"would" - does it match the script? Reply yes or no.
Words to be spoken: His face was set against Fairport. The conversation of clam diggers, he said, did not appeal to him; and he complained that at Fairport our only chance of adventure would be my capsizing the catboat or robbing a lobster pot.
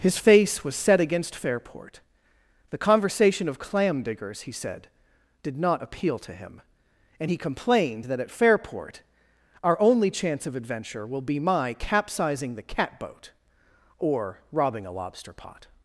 no